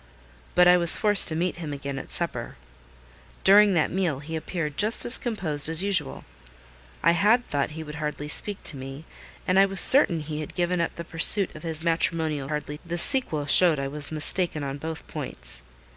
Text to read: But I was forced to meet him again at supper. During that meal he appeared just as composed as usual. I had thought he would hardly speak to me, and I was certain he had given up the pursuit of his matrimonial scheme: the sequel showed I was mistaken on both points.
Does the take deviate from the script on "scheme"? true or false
true